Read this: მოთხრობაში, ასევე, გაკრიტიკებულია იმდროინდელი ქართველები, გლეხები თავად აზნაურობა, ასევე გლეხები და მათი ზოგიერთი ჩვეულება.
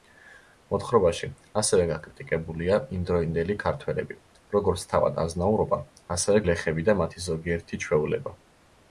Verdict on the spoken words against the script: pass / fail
fail